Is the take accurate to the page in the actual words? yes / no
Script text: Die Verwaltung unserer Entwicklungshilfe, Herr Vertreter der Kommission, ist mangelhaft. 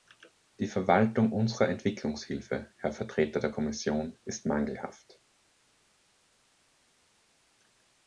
yes